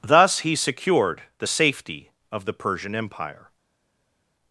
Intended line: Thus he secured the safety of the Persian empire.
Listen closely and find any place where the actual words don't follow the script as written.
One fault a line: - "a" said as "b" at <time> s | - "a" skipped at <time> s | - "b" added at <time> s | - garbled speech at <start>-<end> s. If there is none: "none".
none